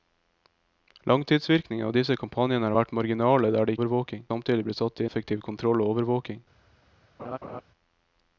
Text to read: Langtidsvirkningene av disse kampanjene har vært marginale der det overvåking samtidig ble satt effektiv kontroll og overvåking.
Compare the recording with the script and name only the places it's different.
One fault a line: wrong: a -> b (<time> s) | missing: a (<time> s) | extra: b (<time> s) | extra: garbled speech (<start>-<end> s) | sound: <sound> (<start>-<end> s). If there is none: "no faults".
sound: laugh (7.2-7.6 s)